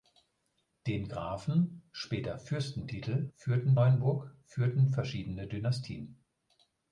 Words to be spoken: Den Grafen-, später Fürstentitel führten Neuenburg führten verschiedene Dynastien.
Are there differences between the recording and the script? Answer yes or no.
no